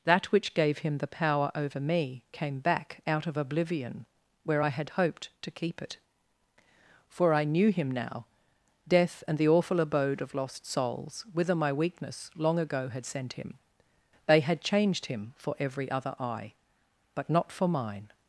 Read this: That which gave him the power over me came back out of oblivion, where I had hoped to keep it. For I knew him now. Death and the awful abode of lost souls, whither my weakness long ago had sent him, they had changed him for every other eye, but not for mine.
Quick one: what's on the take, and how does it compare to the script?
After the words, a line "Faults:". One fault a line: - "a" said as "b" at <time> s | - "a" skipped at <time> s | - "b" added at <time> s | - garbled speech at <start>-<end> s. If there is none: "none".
That which gave him the power over me came back out of oblivion, where I had hoped to keep it. For I knew him now. Death and the awful abode of lost souls, whither my weakness long ago had sent him, they had changed him for every other eye, but not for mine.
Faults:
none